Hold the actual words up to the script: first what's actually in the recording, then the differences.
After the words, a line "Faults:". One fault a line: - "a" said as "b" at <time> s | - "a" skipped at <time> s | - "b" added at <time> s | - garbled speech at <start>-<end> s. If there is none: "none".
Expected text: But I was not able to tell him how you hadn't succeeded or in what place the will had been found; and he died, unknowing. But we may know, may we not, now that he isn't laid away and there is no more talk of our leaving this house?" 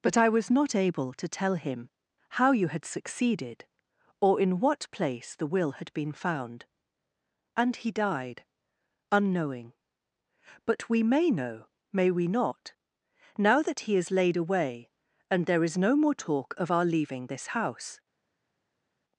But I was not able to tell him how you had succeeded or in what place the will had been found; and he died, unknowing. But we may know, may we not, now that he is laid away and there is no more talk of our leaving this house?"
Faults:
- "hadn't" said as "had" at 2.7 s
- "isn't" said as "is" at 13.9 s